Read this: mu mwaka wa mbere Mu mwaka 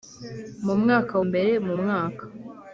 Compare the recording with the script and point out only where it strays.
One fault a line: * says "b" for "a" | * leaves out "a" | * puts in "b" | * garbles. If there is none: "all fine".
* leaves out "wa"